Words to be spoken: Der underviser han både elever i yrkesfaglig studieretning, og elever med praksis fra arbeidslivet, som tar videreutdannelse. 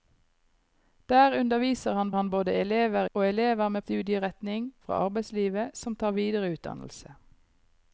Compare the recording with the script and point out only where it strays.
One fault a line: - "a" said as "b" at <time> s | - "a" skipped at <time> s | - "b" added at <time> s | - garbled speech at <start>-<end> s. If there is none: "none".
- "han" added at 2.1 s
- "i yrkesfaglig studieretning" skipped at 3.1 s
- "praksis" said as "studieretning" at 3.8 s